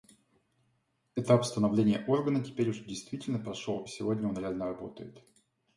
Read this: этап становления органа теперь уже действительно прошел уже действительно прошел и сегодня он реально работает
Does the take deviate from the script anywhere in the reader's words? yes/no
yes